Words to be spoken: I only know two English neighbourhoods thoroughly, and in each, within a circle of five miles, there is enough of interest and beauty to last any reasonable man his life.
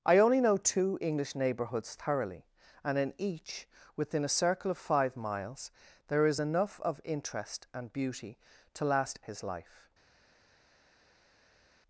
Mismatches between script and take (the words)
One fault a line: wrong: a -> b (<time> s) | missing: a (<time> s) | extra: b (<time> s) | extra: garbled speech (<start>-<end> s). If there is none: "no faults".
missing: any reasonable man (9.2 s)